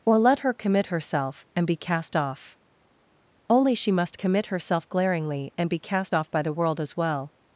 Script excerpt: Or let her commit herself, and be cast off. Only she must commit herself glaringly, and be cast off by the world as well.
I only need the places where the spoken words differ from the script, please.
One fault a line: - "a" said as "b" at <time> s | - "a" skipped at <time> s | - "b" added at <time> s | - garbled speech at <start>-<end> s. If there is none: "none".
none